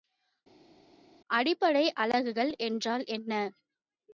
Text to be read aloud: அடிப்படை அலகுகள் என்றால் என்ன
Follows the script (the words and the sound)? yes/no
yes